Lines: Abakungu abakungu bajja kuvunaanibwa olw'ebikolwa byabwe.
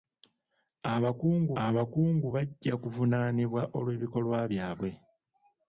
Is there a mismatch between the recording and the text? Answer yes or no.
no